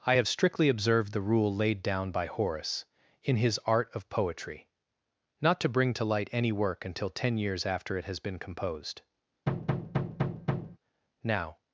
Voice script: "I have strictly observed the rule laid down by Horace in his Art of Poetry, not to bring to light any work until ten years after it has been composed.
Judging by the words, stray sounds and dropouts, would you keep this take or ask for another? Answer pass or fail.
fail